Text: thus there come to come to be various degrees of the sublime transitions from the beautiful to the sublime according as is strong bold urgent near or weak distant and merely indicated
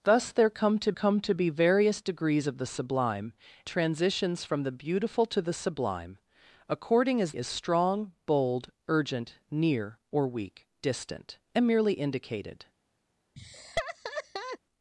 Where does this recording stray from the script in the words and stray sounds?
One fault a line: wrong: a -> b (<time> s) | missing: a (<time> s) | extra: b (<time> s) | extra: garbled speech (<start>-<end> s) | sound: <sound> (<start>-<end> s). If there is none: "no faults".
sound: laugh (13.4-14.6 s)